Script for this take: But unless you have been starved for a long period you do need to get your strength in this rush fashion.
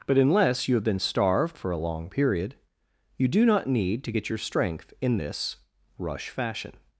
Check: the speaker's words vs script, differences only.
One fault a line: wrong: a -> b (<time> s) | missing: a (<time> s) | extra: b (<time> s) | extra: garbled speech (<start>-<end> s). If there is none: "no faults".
extra: not (3.5 s)